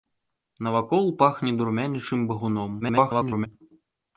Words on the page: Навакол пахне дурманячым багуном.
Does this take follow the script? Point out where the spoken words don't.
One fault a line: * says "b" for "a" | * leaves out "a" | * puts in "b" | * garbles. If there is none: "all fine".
* garbles